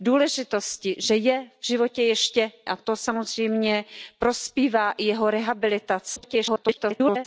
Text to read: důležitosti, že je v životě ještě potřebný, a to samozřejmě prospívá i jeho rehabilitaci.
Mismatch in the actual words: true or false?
true